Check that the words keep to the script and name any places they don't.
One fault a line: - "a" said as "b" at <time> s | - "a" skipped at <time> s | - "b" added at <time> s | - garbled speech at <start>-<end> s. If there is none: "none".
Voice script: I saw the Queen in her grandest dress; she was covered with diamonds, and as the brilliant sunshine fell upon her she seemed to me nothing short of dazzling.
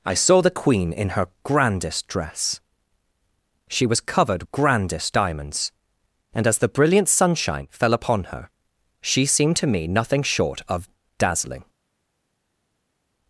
- "with" said as "grandest" at 4.5 s